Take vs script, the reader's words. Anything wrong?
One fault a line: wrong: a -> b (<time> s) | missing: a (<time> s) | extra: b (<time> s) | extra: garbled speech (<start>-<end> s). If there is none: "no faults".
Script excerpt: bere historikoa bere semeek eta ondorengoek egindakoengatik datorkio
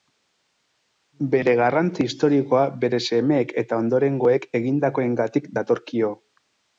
extra: garrantzi (1.6 s)